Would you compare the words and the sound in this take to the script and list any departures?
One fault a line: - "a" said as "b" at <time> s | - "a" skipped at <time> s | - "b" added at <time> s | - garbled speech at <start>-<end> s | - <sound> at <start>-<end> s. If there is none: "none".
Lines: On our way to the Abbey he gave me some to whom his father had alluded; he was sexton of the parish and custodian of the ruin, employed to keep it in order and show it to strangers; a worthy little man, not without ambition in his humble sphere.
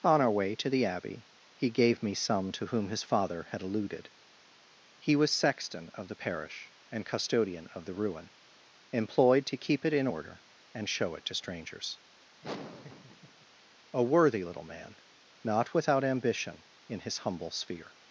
- laugh at 12.4-13.5 s